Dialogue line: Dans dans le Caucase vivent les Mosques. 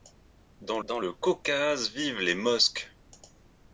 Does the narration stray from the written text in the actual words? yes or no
no